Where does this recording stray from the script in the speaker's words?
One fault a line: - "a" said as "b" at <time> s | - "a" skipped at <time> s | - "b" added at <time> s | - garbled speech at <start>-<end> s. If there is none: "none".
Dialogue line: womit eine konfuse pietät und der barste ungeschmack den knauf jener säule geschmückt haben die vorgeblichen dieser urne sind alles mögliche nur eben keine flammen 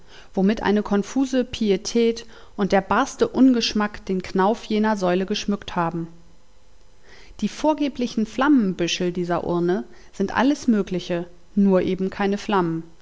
- "flammenbüschel" added at 8.2 s